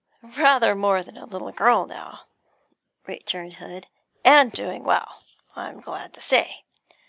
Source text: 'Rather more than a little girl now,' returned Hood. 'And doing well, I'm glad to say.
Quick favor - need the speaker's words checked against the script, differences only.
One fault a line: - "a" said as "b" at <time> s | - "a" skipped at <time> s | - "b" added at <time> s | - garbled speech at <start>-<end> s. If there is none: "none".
none